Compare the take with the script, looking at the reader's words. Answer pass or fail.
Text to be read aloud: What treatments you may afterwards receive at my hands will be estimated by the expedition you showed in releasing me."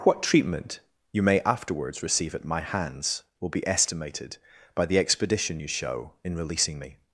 fail